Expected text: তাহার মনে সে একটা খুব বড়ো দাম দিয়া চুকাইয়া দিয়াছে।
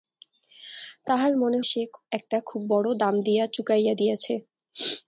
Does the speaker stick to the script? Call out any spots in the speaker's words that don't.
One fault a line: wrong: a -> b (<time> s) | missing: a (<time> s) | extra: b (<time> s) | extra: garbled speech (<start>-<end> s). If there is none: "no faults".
no faults